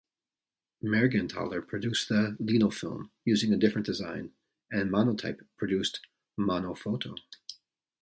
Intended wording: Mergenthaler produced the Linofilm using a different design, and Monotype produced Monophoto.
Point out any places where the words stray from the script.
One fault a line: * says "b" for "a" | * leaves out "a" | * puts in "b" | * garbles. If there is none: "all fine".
all fine